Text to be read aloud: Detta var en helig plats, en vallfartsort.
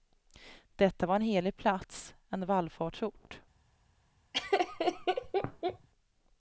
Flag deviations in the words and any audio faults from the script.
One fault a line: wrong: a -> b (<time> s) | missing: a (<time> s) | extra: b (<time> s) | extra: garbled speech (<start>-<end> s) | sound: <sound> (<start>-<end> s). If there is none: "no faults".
sound: laugh (4.3-5.9 s)